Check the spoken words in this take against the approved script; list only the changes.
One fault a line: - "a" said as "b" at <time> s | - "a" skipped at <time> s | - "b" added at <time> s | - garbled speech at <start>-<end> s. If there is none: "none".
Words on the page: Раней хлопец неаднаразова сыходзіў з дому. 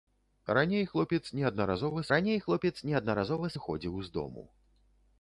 - "раней хлопец неаднаразова" added at 2.1 s